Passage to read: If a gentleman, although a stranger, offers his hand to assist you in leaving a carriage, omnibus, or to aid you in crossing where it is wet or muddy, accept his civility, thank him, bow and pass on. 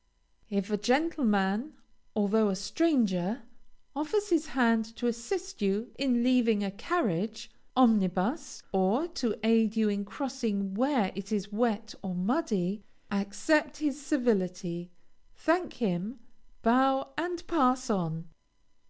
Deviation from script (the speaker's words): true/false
false